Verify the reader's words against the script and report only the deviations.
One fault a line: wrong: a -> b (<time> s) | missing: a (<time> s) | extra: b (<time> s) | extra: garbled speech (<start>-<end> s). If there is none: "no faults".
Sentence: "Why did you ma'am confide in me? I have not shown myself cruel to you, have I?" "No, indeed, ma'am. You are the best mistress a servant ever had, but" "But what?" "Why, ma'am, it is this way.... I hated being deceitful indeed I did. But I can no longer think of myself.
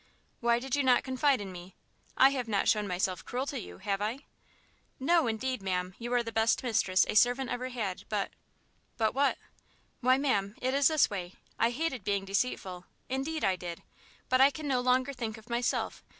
wrong: ma'am -> not (0.8 s)